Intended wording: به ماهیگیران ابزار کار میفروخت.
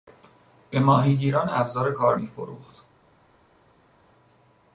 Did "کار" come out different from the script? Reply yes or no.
no